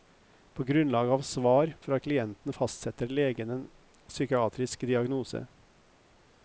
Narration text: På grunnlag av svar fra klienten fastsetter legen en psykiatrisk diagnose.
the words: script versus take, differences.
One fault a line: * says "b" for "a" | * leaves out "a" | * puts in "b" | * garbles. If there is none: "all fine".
all fine